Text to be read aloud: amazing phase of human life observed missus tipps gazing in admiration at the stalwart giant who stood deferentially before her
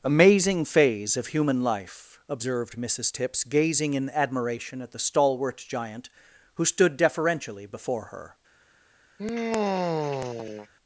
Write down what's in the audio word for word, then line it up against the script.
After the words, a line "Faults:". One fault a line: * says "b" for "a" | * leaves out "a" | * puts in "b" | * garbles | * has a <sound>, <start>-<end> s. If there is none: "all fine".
amazing phase of human life observed missus tipps gazing in admiration at the stalwart giant who stood deferentially before her
Faults:
* has a sigh, 9.2-10.7 s